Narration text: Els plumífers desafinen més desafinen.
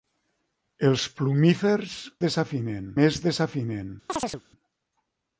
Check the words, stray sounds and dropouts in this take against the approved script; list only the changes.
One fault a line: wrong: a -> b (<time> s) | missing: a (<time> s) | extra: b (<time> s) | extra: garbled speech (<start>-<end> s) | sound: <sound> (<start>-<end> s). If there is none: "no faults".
sound: chirp (4.1-4.4 s)